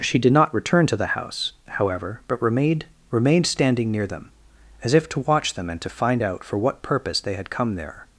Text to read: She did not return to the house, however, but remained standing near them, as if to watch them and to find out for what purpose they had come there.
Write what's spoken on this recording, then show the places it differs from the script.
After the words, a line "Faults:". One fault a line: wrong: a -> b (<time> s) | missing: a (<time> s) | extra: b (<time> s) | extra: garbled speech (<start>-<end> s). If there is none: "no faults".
She did not return to the house, however, but remained remained standing near them, as if to watch them and to find out for what purpose they had come there.
Faults:
extra: remained (3.1 s)